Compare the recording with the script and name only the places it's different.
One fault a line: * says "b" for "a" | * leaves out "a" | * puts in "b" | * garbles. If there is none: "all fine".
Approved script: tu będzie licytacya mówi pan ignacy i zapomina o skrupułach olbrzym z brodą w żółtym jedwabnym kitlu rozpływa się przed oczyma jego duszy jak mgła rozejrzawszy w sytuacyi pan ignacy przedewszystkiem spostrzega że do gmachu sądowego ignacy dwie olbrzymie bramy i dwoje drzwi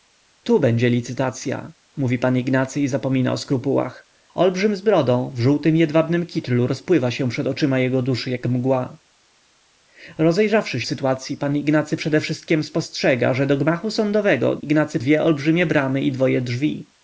all fine